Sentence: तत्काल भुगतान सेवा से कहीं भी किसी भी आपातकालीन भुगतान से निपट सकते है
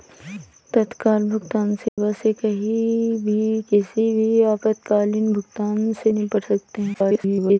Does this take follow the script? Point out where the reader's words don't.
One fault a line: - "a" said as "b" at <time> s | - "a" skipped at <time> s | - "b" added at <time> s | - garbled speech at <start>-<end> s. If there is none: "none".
- garbled speech at 6.9-7.6 s